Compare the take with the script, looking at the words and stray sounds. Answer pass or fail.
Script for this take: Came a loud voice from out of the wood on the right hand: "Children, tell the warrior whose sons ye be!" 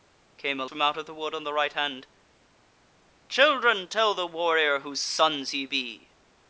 fail